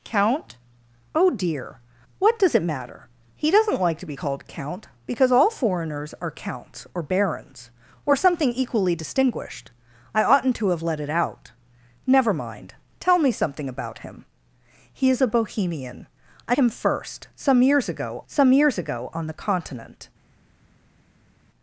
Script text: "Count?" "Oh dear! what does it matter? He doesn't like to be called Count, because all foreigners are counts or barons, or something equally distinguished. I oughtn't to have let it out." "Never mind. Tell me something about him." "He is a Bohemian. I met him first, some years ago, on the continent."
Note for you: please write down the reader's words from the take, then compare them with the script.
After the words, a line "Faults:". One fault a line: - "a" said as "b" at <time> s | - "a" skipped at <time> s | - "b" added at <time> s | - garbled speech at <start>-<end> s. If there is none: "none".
"Count?" "Oh dear! what does it matter? He doesn't like to be called Count, because all foreigners are counts or barons, or something equally distinguished. I oughtn't to have let it out." "Never mind. Tell me something about him." "He is a Bohemian. I him first, some years ago some years ago, on the continent."
Faults:
- "met" skipped at 16.5 s
- "some years ago" added at 18.2 s